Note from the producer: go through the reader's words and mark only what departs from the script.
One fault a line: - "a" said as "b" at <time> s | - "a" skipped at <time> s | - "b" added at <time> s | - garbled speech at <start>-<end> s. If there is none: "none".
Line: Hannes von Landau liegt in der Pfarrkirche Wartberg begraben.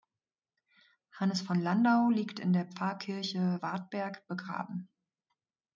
none